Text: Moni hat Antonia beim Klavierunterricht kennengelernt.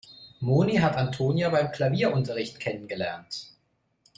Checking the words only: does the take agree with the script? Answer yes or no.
yes